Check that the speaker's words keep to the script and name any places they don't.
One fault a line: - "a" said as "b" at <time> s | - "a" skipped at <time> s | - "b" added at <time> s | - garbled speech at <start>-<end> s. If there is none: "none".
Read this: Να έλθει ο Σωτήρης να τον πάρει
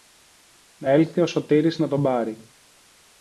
none